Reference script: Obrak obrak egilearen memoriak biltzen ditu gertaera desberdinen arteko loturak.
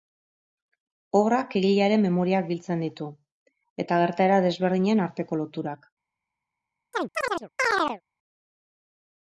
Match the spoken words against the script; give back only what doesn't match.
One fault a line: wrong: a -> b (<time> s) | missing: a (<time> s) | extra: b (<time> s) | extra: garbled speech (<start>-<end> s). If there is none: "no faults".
missing: obrak (1.5 s)
extra: eta (3.9 s)